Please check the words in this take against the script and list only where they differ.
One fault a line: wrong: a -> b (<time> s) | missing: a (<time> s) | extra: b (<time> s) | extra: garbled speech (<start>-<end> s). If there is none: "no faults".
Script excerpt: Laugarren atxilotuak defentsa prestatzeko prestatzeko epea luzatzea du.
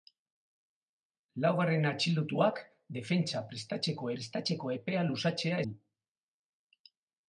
no faults